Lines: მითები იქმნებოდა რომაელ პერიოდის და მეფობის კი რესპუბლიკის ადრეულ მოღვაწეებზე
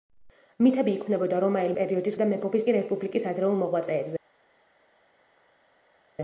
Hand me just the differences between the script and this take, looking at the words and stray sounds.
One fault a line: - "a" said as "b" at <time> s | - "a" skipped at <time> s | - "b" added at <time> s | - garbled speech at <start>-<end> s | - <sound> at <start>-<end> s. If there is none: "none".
none